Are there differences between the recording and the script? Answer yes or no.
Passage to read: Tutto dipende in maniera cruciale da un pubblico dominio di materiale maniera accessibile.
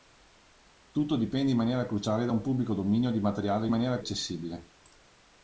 no